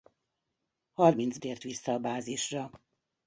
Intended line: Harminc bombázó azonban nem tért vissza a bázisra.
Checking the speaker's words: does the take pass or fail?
fail